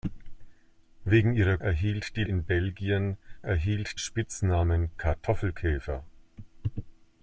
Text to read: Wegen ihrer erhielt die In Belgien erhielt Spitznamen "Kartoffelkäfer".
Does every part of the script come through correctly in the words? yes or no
yes